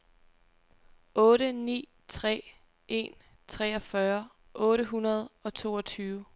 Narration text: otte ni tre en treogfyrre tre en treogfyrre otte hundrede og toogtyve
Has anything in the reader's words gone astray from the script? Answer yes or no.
yes